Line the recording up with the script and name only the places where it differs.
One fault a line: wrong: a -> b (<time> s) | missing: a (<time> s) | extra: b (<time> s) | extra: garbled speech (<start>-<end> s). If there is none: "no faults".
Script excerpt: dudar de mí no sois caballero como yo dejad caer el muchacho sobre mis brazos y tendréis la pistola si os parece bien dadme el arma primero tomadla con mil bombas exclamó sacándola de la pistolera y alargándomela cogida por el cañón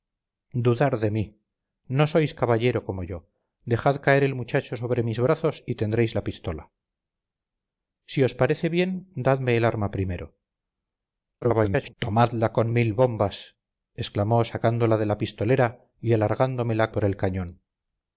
extra: garbled speech (11.4-11.9 s)
missing: cogida (16.9 s)